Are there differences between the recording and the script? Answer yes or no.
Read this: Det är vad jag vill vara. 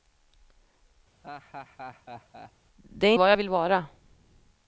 no